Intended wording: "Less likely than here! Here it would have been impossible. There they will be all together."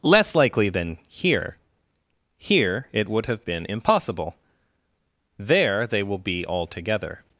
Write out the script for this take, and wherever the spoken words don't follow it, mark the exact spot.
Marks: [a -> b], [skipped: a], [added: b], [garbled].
"Less likely than here! Here it would have been impossible. There they will be all together."